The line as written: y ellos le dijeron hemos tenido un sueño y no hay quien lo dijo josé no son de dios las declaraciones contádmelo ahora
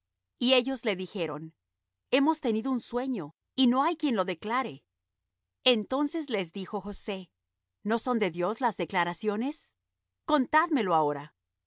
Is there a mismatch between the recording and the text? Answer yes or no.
yes